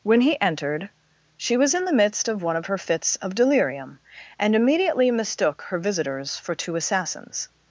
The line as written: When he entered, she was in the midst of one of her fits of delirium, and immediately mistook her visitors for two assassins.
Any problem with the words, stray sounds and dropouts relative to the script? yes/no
no